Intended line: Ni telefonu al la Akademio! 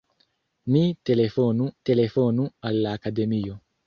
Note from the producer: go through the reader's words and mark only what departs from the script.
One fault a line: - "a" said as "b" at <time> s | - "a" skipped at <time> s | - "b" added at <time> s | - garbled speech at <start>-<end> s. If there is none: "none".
- "telefonu" added at 1.9 s